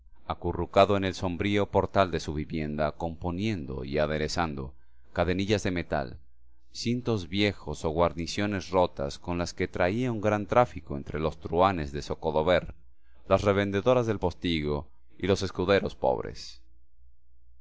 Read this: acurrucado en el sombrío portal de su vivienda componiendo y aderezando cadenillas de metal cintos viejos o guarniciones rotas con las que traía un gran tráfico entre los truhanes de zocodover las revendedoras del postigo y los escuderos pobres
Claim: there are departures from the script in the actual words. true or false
false